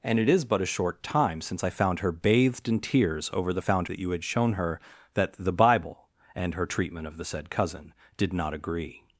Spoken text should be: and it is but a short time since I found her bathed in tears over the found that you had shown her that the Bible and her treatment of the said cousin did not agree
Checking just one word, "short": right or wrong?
right